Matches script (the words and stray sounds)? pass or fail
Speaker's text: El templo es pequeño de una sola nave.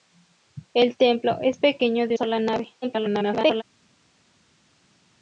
fail